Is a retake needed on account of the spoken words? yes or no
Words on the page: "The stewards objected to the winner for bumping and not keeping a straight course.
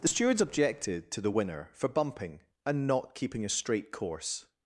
no